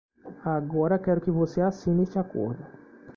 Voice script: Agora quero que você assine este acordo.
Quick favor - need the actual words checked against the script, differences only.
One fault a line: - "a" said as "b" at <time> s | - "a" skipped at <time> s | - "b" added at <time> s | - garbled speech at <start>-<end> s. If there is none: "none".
none